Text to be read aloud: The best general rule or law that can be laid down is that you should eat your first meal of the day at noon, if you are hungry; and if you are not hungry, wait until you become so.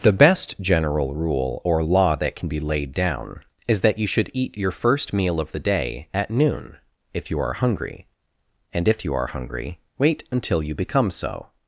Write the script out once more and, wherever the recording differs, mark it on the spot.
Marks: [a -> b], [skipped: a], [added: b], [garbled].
The best general rule or law that can be laid down is that you should eat your first meal of the day at noon, if you are hungry; and if you are [skipped: not] hungry, wait until you become so.